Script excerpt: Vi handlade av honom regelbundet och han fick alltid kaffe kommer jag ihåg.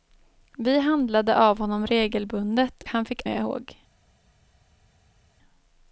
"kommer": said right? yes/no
no